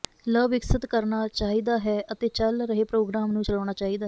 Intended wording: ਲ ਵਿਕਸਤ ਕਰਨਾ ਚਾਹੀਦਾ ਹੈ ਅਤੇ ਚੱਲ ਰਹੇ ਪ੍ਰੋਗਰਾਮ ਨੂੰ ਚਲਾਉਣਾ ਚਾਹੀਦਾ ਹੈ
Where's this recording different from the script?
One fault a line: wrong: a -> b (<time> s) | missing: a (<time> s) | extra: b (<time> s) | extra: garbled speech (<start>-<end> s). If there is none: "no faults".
no faults